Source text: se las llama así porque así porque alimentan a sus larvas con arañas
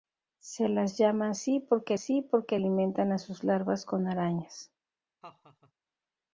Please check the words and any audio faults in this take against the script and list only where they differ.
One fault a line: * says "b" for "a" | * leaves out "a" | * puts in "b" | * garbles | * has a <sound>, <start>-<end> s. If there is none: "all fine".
* has a laugh, 5.2-5.7 s